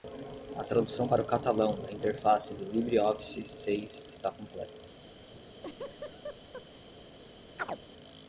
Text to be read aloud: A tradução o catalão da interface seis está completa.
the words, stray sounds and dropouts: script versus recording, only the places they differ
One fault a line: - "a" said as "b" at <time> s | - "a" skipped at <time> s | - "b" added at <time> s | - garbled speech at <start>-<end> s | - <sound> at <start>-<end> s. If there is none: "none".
- "para" added at 1.0 s
- "do LibreOffice" added at 2.5 s
- laugh at 5.3-6.8 s
- chirp at 7.6-7.8 s